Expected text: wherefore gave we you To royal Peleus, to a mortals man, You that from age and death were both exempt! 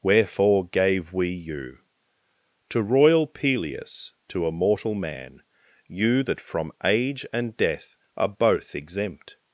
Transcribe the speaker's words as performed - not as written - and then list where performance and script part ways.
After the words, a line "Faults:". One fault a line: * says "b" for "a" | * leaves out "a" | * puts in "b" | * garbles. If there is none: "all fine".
wherefore gave we you To royal Peleus, to a mortal man, You that from age and death are both exempt!
Faults:
* says "mortal" for "mortals"
* says "are" for "were"